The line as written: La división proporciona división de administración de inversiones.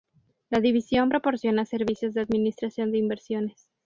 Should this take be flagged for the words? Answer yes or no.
yes